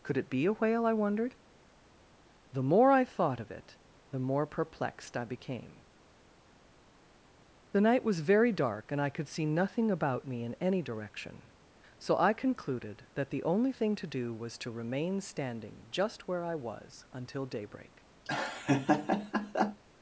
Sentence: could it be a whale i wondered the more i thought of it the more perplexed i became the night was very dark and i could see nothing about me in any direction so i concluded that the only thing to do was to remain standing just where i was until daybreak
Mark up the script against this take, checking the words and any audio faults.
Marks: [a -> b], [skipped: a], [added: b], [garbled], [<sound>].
could it be a whale i wondered the more i thought of it the more perplexed i became the night was very dark and i could see nothing about me in any direction so i concluded that the only thing to do was to remain standing just where i was until daybreak [laugh]